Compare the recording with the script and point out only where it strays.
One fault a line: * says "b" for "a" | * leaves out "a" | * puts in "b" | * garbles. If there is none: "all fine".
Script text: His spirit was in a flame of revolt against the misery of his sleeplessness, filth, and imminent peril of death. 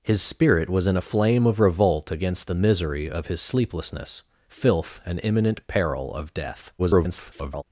* garbles